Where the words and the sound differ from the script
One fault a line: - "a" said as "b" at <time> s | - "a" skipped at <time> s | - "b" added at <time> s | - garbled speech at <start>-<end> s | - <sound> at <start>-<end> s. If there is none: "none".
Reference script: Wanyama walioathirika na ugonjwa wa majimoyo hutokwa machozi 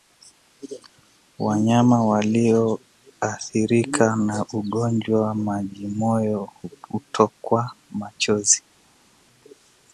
none